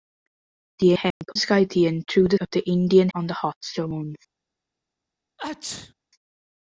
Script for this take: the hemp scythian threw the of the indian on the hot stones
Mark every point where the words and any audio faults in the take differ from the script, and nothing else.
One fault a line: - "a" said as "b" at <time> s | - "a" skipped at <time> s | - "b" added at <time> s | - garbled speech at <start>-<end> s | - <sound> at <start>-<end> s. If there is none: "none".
- dropout at 1.1-1.2 s
- sneeze at 5.4-5.9 s